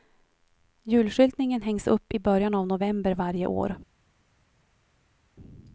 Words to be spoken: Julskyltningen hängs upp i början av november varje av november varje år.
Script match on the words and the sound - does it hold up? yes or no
no